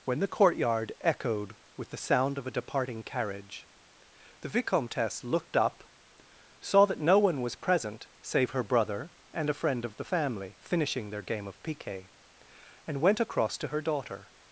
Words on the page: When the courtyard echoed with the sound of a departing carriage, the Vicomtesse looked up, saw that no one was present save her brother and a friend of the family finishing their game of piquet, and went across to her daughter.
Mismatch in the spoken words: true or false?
false